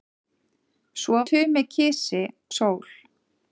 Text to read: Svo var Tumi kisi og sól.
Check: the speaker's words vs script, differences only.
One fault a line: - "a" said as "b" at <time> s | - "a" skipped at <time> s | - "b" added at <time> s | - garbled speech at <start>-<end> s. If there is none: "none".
- "var" skipped at 1.2 s
- "og" skipped at 2.2 s